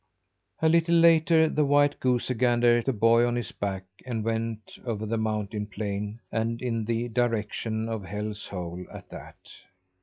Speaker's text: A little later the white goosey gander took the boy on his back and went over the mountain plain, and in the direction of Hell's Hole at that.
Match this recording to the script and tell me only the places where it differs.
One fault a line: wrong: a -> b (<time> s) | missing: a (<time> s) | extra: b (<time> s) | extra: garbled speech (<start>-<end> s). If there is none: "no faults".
missing: took (2.8 s)